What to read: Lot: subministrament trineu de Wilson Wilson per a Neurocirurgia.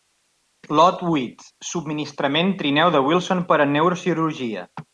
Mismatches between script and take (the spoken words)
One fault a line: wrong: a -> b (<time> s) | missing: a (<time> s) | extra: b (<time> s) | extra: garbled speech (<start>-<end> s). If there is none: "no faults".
extra: huit (1.1 s)
missing: Wilson (3.4 s)